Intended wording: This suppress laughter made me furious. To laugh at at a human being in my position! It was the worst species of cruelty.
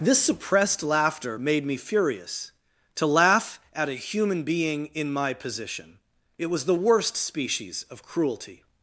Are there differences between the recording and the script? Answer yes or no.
yes